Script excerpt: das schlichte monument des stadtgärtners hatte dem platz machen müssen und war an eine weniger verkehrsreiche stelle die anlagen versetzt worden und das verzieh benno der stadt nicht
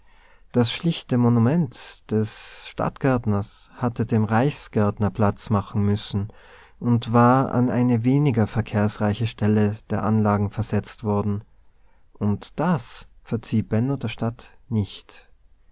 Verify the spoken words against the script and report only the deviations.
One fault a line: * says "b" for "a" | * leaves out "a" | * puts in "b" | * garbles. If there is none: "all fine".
* puts in "reichsgärtner"
* says "der" for "die"